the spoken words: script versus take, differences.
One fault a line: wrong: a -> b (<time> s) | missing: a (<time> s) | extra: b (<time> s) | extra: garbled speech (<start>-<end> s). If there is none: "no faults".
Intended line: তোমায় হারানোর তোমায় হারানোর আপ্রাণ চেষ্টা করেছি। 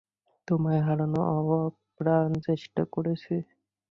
missing: তোমায় হারানোর (1.2 s)